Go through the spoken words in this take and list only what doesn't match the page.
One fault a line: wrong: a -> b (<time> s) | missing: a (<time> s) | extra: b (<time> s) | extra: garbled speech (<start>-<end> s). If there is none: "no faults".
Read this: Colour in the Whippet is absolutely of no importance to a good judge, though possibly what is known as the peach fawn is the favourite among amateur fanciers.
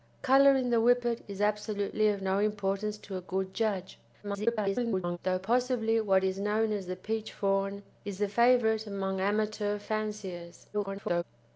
extra: garbled speech (4.2-5.2 s)
extra: garbled speech (10.7-11.2 s)